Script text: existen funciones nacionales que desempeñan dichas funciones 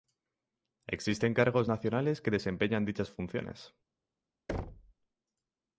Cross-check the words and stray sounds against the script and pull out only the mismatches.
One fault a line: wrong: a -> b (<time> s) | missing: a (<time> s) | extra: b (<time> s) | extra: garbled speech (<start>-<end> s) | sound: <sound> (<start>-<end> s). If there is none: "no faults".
wrong: funciones -> cargos (1.4 s)
sound: thud (4.5-4.9 s)